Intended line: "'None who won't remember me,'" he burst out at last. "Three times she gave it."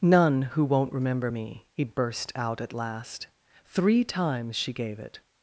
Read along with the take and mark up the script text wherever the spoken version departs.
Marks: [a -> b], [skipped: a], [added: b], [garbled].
"'None who won't remember me,'" he burst out at last. "Three times she gave it."